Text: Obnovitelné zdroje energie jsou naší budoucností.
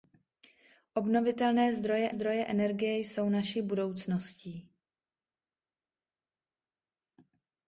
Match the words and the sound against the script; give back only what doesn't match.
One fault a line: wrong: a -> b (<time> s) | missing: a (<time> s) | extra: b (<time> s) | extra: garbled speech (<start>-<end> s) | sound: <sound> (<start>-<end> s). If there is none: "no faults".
extra: zdroje (2.1 s)